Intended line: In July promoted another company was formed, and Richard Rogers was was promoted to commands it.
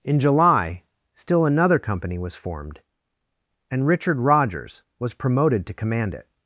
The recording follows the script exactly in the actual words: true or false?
false